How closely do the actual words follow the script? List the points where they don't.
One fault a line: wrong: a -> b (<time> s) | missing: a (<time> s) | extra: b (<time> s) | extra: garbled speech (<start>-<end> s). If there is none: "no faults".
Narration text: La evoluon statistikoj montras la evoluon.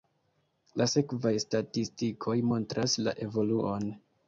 wrong: evoluon -> sekvaj (0.9 s)